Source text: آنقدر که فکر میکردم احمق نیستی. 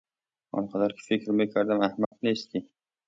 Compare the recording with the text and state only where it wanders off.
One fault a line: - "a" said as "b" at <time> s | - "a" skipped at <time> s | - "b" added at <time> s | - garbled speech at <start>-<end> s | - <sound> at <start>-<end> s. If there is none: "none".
- dropout at 2.0-2.1 s